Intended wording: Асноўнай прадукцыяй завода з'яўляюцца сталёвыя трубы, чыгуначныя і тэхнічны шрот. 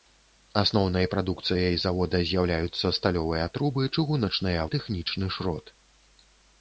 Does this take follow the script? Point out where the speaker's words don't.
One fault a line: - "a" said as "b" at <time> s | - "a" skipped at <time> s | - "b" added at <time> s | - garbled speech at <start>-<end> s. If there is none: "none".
none